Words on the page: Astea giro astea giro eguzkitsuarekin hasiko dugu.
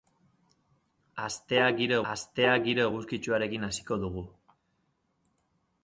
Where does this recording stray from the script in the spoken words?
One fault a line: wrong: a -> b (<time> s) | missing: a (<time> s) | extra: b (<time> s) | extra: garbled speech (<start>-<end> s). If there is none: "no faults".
no faults